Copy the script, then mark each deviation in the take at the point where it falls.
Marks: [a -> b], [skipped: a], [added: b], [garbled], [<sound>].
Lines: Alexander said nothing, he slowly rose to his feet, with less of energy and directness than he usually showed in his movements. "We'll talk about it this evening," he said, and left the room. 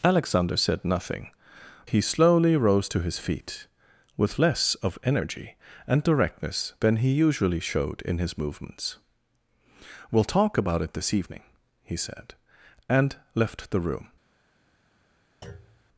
Alexander said nothing, he slowly rose to his feet, with less of energy and directness than he usually showed in his movements. "We'll talk about it this evening," he said, and left the room. [thud]